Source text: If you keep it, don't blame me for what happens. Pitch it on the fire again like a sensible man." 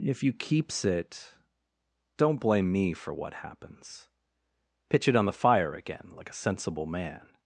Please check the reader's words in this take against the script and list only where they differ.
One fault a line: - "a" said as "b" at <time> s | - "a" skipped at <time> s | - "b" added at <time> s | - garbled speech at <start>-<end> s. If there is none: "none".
- "keep" said as "keeps" at 0.3 s